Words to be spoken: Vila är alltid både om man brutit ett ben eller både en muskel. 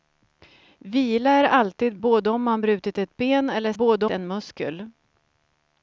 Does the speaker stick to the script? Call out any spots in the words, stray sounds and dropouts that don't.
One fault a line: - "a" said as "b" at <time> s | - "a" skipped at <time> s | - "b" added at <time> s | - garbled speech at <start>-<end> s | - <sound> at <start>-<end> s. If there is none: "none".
none